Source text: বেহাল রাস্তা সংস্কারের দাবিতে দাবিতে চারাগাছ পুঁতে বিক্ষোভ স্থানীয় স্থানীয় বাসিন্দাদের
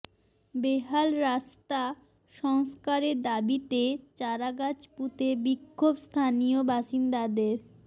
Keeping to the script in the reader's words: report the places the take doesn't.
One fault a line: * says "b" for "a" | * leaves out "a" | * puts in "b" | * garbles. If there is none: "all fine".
* leaves out "দাবিতে"
* leaves out "স্থানীয়"